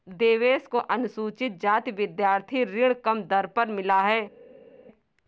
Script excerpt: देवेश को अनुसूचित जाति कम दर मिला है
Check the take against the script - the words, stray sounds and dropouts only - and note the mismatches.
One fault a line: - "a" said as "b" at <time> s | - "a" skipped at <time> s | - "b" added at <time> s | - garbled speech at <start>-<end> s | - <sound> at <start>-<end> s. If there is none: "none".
- "विद्यार्थी ऋण" added at 1.9 s
- "पर" added at 3.5 s